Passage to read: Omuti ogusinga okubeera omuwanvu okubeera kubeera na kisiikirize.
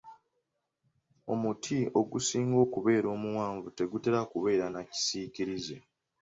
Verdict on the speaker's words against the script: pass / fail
fail